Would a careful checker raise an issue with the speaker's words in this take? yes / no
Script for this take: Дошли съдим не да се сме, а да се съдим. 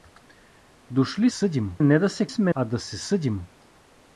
no